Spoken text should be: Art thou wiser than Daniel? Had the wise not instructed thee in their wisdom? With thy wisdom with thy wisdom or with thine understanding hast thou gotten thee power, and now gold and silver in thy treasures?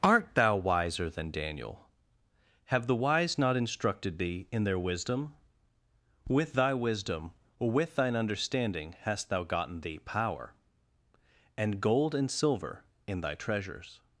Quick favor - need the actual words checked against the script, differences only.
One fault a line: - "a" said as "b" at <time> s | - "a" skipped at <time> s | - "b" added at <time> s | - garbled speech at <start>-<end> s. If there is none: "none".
- "Had" said as "Have" at 2.6 s
- "with thy wisdom" skipped at 7.3 s
- "now" skipped at 11.8 s